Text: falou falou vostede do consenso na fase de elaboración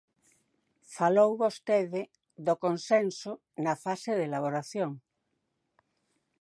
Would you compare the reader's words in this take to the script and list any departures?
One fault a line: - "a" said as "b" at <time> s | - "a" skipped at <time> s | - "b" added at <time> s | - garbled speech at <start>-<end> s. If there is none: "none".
- "falou" skipped at 1.3 s